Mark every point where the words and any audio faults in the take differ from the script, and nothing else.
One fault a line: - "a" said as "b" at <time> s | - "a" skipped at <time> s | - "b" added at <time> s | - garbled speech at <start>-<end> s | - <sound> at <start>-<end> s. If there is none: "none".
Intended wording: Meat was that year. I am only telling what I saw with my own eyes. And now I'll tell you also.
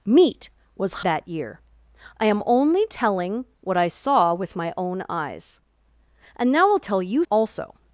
none